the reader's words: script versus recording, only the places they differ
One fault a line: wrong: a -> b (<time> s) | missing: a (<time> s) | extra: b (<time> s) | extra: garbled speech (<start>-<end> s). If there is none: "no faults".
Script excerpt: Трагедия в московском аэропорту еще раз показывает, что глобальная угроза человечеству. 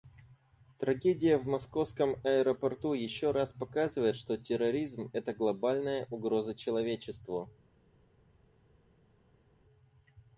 extra: терроризм это (4.3 s)